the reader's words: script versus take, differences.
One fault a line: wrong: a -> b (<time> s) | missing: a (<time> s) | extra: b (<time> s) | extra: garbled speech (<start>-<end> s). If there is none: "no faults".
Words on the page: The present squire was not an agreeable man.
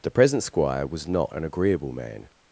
no faults